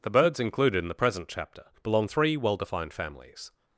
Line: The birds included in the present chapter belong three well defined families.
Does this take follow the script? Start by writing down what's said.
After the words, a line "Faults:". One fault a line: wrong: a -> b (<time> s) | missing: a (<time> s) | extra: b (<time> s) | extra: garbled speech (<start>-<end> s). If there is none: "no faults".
The birds included in the present chapter belong three well defined families.
Faults:
no faults